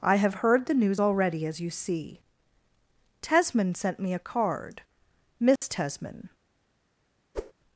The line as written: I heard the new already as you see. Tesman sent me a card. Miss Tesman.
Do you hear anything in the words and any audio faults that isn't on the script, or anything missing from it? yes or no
yes